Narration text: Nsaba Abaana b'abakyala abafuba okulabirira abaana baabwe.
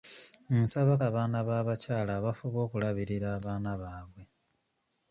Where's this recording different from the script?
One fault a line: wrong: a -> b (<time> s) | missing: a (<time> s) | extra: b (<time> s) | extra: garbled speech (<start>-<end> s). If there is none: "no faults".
no faults